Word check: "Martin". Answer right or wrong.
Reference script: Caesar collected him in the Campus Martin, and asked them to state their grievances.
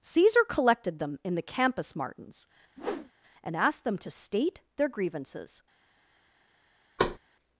wrong